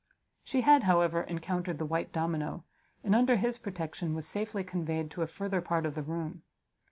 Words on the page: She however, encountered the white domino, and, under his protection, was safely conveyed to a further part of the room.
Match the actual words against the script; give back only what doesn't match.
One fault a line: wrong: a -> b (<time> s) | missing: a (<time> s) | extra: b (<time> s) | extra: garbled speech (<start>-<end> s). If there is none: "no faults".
extra: had (0.6 s)